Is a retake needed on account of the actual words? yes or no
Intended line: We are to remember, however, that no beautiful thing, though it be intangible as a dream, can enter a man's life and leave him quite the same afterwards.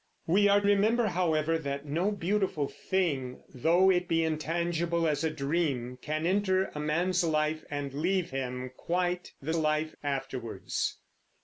yes